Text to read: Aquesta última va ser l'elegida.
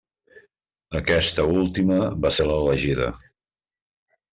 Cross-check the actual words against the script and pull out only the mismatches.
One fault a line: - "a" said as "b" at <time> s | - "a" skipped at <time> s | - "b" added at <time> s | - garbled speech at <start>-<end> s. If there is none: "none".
none